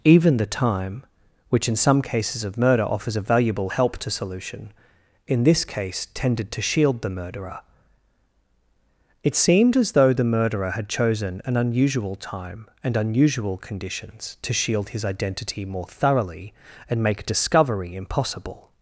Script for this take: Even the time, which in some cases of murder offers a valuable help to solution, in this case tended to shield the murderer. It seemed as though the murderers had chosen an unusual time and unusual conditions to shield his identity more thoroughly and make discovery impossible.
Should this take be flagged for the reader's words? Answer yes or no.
yes